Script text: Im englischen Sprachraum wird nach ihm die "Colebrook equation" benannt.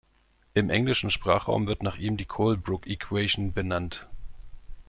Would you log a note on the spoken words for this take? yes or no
no